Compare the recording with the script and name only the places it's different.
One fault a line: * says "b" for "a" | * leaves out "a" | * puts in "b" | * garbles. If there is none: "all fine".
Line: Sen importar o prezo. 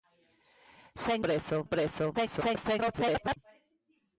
* says "prezo" for "importar"
* garbles